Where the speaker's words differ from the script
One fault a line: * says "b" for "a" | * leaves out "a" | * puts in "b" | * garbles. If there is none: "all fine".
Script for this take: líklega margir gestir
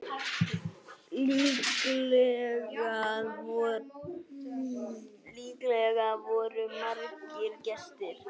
* puts in "voru"